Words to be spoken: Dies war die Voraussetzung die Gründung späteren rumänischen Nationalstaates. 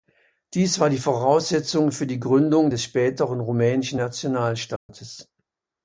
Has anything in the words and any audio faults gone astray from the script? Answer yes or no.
yes